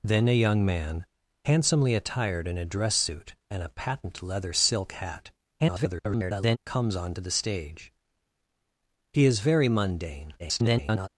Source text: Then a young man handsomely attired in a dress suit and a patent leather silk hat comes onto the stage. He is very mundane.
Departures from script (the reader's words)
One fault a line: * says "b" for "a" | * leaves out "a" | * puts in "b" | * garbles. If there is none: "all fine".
* garbles
* garbles